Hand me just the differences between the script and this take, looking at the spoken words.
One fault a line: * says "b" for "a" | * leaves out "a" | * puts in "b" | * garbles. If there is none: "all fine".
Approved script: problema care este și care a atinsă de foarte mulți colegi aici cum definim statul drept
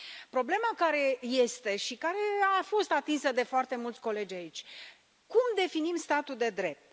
* puts in "fost"
* puts in "de"